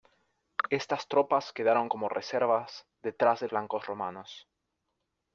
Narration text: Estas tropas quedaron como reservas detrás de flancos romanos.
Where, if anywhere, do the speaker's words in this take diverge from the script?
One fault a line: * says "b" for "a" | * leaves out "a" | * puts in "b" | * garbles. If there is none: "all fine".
all fine